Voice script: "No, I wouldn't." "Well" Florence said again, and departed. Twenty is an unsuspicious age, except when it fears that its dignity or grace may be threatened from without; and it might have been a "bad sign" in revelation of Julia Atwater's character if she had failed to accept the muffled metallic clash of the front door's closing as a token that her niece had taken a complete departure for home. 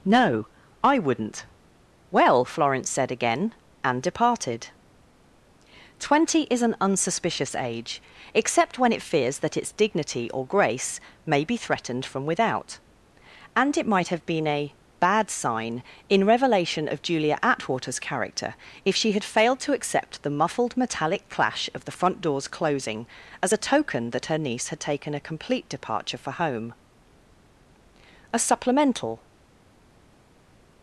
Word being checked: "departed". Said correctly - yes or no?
yes